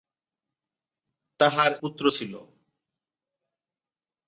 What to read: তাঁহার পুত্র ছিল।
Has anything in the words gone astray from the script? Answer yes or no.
no